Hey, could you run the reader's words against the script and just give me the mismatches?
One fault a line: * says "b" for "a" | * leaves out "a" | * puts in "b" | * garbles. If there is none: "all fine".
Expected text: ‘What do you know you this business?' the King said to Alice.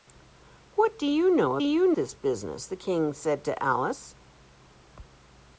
all fine